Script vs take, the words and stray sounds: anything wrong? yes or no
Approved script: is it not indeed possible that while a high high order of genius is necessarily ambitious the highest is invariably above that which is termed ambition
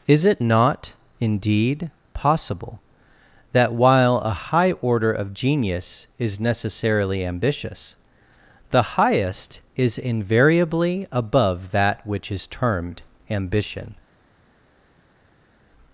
yes